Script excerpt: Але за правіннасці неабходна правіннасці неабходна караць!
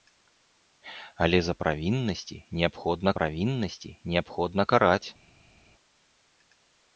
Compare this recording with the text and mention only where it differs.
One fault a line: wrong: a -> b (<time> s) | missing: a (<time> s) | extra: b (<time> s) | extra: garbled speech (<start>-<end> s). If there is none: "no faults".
no faults